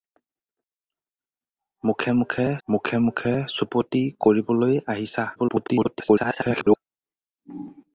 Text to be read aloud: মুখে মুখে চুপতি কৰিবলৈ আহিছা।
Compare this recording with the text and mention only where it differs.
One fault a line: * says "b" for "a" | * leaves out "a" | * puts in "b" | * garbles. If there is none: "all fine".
* puts in "মুখে মুখে"
* garbles